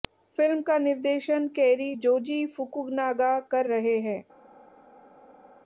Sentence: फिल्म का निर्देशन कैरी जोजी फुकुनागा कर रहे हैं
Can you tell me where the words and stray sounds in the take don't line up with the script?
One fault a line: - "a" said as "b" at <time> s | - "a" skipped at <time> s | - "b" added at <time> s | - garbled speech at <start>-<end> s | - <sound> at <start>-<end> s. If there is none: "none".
none